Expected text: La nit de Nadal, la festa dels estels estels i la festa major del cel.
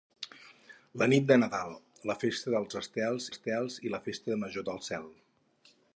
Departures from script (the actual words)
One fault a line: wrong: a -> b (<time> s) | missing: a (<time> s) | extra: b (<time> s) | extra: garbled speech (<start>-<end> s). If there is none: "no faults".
no faults